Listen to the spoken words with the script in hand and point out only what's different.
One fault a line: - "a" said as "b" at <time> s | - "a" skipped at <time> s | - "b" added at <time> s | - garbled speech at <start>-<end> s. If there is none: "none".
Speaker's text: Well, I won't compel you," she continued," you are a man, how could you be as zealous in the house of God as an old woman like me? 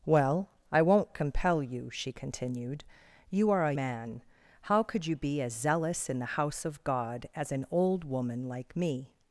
none